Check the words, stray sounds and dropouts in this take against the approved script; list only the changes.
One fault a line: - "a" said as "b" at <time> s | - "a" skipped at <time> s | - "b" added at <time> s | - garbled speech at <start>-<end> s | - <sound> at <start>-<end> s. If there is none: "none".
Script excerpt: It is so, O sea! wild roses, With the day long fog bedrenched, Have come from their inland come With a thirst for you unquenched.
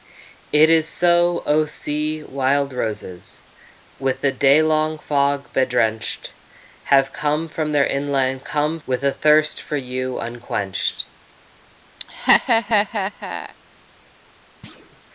- laugh at 12.0-13.6 s
- thud at 14.6-15.0 s